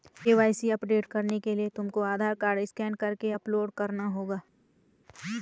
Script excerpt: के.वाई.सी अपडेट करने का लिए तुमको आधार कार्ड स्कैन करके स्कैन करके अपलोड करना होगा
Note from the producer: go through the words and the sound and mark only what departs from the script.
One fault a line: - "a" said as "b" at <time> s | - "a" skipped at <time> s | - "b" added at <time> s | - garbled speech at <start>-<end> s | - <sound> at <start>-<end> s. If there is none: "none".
- "का" said as "के" at 1.4 s
- "स्कैन करके" skipped at 3.3 s